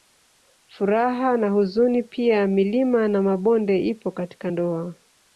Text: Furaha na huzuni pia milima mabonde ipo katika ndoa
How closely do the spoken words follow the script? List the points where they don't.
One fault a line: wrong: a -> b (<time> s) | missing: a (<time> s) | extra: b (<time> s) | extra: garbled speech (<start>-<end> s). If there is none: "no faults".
extra: na (3.1 s)